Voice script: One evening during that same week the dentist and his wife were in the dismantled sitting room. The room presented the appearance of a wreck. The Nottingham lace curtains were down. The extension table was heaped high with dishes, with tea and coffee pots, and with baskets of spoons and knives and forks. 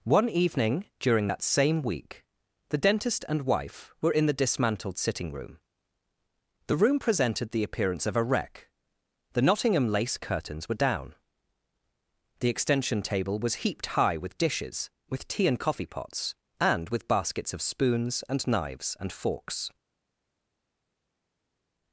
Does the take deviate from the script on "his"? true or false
true